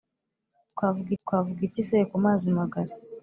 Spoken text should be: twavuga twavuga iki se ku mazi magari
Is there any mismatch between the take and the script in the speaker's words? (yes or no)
no